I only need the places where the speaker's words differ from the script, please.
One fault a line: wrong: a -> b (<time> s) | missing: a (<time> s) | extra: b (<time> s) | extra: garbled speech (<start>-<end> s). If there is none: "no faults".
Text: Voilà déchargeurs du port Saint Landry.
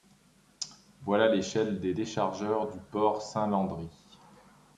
extra: l'échelle des (1.3 s)